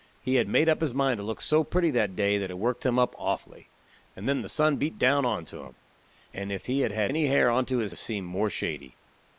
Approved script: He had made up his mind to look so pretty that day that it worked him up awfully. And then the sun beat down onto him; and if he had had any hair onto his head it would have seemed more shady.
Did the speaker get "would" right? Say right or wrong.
wrong